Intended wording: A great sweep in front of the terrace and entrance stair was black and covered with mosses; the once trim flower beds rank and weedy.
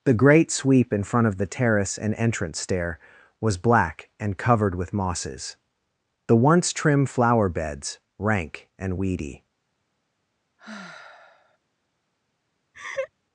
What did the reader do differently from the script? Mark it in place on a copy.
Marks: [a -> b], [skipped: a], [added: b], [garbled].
[A -> The] great sweep in front of the terrace and entrance stair was black and covered with mosses; the once trim flower beds rank and weedy.